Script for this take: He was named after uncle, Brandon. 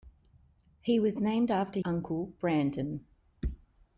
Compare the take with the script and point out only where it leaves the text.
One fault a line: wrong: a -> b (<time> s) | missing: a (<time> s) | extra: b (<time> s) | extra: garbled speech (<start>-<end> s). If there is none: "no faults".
no faults